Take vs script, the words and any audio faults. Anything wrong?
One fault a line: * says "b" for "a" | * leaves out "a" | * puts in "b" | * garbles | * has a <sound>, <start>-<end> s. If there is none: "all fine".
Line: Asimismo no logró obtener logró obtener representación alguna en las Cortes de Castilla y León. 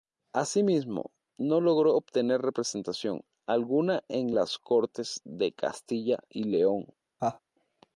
* leaves out "logró obtener"
* has a laugh, 7.2-7.4 s